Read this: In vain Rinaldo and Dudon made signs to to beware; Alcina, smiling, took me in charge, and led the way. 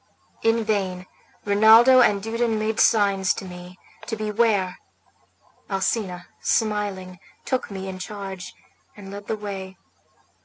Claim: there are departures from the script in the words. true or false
true